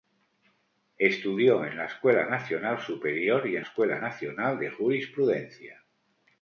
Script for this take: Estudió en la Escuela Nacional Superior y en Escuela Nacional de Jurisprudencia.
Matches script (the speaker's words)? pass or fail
pass